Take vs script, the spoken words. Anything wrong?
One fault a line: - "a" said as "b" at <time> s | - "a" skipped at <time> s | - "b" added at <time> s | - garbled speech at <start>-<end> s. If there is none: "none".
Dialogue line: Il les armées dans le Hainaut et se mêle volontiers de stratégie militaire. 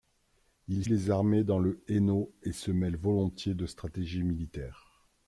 none